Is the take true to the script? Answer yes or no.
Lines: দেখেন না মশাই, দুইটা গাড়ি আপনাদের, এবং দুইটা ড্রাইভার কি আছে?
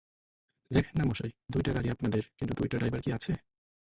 no